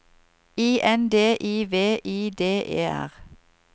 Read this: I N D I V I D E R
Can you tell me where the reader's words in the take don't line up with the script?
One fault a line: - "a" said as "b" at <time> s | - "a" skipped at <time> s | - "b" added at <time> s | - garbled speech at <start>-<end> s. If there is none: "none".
none